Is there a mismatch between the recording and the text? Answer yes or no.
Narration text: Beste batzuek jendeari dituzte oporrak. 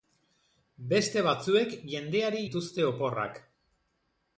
no